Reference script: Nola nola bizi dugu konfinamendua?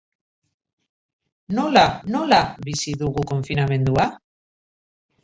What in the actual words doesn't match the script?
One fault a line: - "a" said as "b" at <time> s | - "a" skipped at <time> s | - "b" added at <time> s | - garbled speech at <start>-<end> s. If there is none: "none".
none